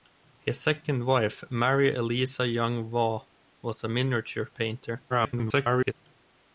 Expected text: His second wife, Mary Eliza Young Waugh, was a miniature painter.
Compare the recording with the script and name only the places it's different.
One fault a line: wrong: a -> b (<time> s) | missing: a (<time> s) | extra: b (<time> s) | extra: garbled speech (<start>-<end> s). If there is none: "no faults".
extra: garbled speech (5.1-5.9 s)